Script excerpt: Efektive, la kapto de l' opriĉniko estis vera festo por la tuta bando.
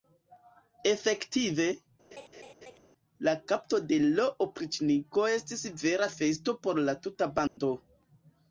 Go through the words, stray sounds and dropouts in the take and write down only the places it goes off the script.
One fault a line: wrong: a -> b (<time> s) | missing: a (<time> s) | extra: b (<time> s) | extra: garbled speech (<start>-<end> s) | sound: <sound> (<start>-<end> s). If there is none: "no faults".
sound: laugh (2.1-2.8 s)
sound: dropout (7.5-7.6 s)